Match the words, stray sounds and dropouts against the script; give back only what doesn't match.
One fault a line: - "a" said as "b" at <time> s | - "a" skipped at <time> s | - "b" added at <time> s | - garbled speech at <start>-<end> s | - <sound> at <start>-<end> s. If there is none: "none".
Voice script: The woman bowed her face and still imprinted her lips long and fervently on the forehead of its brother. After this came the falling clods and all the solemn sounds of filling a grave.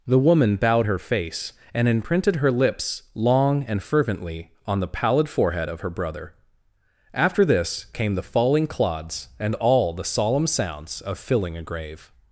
- "still" skipped at 1.9 s
- "pallid" added at 4.9 s
- "its" said as "her" at 5.8 s